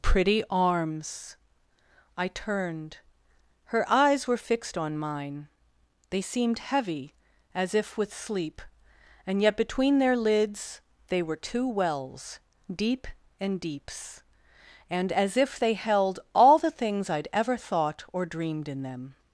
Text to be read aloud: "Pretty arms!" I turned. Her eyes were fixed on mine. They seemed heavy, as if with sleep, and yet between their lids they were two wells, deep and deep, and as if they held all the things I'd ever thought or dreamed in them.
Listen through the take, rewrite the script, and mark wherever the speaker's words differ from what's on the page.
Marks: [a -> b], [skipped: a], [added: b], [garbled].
"Pretty arms!" I turned. Her eyes were fixed on mine. They seemed heavy, as if with sleep, and yet between their lids they were two wells, deep and [deep, -> deeps] and as if they held all the things I'd ever thought or dreamed in them.